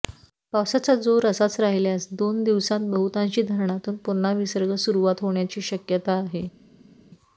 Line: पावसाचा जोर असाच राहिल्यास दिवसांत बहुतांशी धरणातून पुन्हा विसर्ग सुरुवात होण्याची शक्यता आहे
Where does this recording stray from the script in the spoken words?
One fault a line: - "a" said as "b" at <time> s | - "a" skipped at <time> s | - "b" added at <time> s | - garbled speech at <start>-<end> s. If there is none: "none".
- "दोन" added at 2.1 s